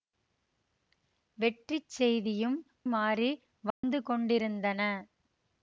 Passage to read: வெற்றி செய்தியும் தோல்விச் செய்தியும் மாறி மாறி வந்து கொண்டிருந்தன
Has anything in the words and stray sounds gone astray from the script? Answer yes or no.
yes